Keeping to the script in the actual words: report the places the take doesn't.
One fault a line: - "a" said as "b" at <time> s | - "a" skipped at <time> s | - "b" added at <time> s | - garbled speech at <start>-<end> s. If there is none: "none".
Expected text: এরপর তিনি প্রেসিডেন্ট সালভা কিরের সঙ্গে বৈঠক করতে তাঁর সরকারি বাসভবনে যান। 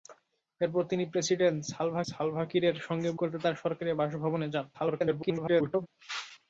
- "সালভা" added at 2.1 s
- "বৈঠক" skipped at 3.1 s
- garbled speech at 4.7-5.9 s